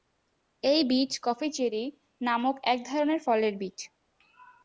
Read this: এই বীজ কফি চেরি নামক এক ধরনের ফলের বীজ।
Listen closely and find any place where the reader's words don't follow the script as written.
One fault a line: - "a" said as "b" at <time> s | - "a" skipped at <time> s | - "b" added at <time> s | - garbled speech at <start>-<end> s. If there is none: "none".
none